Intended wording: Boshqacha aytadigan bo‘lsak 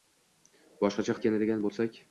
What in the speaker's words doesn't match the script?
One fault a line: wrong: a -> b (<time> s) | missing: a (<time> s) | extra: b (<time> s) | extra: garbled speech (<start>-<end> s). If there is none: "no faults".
no faults